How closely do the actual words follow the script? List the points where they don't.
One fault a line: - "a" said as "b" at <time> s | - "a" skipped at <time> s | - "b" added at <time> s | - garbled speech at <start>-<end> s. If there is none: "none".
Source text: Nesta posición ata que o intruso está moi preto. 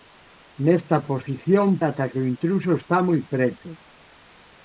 none